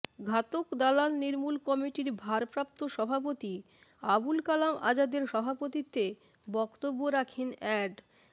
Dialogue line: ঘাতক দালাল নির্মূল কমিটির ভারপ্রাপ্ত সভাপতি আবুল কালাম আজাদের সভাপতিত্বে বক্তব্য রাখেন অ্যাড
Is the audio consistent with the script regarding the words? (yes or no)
yes